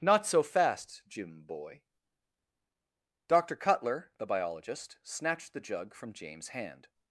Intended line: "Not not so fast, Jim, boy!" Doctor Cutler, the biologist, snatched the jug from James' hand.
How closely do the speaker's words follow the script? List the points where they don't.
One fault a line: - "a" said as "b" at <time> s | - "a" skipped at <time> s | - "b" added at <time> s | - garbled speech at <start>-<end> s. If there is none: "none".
- "not" skipped at 0.2 s